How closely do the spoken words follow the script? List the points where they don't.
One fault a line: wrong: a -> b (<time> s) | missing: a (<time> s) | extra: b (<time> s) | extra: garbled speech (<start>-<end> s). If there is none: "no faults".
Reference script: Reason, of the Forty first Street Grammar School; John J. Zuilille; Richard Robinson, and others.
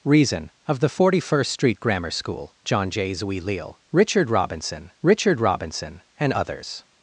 extra: Richard Robinson (5.0 s)